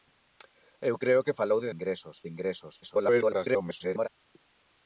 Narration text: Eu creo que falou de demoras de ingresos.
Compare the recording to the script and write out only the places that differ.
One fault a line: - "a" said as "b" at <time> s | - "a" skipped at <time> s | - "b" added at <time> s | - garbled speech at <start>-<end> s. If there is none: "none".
- "demoras" said as "ingresos" at 1.7 s
- garbled speech at 2.8-4.1 s